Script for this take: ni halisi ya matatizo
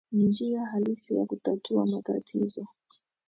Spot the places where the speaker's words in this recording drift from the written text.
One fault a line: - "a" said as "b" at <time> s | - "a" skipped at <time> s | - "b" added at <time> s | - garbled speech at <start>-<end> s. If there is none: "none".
- "njia" added at 0.2 s
- "kutatua" added at 1.2 s